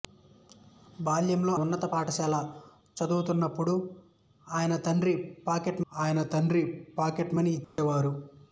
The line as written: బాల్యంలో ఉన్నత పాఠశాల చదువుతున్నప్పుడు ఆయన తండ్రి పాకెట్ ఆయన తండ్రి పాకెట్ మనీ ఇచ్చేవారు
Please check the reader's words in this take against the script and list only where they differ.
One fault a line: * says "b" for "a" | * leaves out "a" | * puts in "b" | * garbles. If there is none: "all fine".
all fine